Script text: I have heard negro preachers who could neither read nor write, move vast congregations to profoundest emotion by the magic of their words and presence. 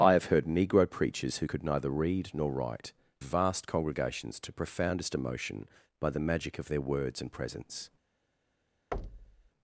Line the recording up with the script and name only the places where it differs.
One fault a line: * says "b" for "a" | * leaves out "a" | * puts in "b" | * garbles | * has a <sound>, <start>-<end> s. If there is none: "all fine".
* leaves out "move"
* has a thud, 8.9-9.5 s